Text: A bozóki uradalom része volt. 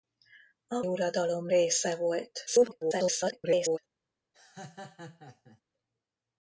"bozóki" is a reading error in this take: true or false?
true